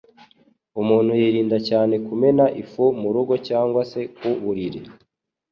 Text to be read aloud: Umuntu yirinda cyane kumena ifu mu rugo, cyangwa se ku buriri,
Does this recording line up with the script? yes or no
yes